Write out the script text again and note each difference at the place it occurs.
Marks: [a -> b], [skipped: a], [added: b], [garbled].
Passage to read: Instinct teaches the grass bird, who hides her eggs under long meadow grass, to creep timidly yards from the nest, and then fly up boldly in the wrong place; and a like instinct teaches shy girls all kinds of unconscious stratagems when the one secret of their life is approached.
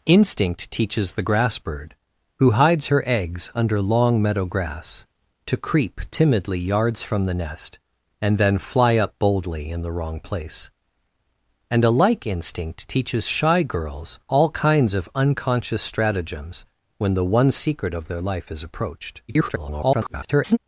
Instinct teaches the grass bird, who hides her eggs under long meadow grass, to creep timidly yards from the nest, and then fly up boldly in the wrong place; and a like instinct teaches shy girls all kinds of unconscious stratagems when the one secret of their life is approached. [garbled]